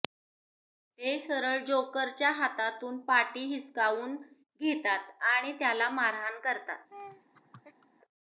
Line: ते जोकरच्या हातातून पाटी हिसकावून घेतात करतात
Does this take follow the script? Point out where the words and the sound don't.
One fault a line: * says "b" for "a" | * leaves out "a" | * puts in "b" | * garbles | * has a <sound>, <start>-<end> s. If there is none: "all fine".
* puts in "सरळ"
* puts in "आणि त्याला मारहाण"
* has a laugh, 6.9-7.9 s